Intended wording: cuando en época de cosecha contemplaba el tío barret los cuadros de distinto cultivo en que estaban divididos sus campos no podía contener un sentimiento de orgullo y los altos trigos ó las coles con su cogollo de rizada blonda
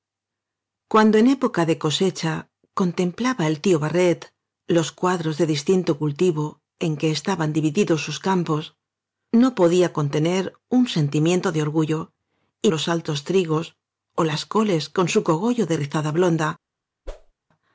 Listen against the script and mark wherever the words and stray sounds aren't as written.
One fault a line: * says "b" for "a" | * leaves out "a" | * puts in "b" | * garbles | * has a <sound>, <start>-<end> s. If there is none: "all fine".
* has a whoosh, 17.1-17.3 s